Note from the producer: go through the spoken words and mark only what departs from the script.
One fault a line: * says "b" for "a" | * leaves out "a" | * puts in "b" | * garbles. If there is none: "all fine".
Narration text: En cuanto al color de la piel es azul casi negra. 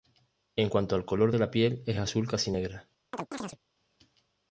all fine